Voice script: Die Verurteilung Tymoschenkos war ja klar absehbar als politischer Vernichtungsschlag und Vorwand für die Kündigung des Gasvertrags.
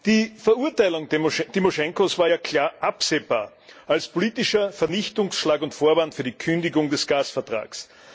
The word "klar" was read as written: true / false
true